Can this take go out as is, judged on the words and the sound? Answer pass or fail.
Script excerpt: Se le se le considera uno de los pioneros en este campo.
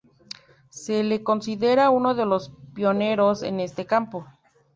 fail